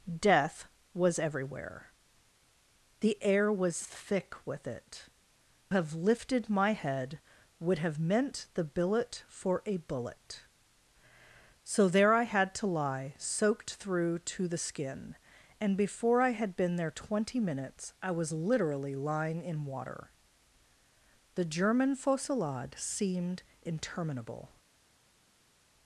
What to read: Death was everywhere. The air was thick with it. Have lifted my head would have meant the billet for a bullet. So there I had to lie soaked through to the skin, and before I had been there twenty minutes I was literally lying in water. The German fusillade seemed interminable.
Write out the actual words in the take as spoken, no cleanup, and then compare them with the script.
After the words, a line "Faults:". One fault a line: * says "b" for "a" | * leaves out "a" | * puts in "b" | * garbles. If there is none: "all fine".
Death was everywhere. The air was thick with it. Have lifted my head would have meant the billet for a bullet. So there I had to lie soaked through to the skin, and before I had been there twenty minutes I was literally lying in water. The German fusillade seemed interminable.
Faults:
all fine